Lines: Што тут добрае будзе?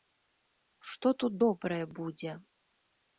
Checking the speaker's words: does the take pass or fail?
pass